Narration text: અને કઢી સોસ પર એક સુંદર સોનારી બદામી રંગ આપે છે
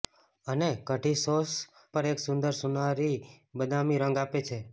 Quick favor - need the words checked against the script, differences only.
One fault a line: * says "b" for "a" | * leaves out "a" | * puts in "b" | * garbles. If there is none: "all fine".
all fine